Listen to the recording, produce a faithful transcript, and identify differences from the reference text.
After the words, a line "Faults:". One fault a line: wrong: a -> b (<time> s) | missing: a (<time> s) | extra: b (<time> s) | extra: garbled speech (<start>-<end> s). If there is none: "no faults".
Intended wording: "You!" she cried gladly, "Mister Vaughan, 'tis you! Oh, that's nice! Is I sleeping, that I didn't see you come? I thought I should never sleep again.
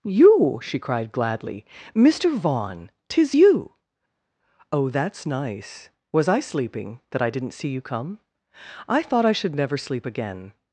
"You!" she cried gladly, "Mister Vaughan, 'tis you! Oh, that's nice! Was I sleeping, that I didn't see you come? I thought I should never sleep again.
Faults:
wrong: Is -> Was (6.1 s)